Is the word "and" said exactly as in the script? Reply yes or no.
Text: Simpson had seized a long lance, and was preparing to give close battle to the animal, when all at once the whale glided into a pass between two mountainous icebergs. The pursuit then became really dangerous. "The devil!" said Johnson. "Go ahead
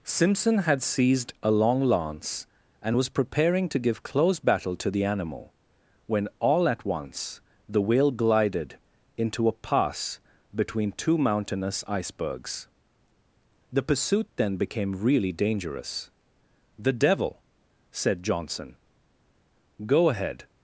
yes